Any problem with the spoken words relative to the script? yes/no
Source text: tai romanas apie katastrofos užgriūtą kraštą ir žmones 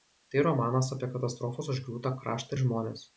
no